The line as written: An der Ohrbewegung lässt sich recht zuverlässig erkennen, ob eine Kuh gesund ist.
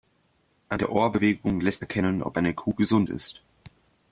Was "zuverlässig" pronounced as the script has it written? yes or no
no